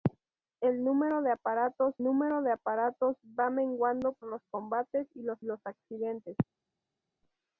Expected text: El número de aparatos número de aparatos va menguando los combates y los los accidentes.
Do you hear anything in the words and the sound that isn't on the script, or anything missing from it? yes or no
no